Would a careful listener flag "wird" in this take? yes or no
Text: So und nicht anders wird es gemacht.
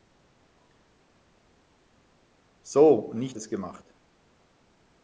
yes